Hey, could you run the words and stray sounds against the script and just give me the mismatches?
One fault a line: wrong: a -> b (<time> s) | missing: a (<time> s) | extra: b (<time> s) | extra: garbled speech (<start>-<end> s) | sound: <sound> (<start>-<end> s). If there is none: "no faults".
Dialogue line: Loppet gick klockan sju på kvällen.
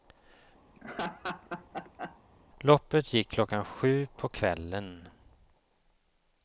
sound: laugh (0.7-2.2 s)